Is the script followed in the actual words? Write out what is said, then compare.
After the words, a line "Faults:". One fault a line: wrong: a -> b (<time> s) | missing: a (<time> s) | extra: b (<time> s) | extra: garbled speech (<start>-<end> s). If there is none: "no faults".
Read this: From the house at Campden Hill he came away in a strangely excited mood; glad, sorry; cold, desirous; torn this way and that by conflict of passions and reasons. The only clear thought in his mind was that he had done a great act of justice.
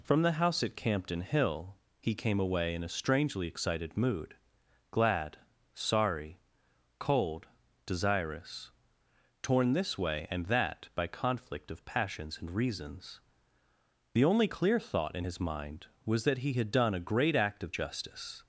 From the house at Campden Hill he came away in a strangely excited mood; glad, sorry; cold, desirous; torn this way and that by conflict of passions and reasons. The only clear thought in his mind was that he had done a great act of justice.
Faults:
no faults